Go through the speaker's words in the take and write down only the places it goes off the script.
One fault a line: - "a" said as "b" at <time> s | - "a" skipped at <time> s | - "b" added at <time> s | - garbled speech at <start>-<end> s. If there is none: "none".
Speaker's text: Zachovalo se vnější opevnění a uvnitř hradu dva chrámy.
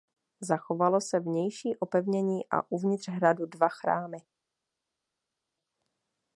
none